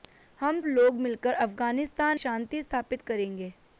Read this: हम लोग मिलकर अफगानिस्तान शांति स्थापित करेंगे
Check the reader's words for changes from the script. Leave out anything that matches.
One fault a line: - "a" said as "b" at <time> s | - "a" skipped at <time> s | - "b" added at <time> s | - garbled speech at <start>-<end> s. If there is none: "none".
none